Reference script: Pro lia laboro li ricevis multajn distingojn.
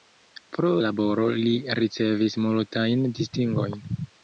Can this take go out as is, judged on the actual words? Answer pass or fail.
fail